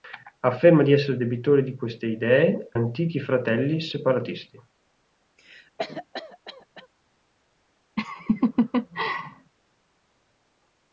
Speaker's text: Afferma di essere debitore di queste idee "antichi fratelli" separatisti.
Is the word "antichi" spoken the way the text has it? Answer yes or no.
yes